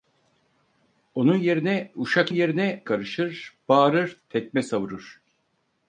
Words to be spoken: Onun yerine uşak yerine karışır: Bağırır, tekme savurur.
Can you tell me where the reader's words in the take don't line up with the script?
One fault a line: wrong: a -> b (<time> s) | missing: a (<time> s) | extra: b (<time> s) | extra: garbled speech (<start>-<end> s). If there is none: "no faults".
no faults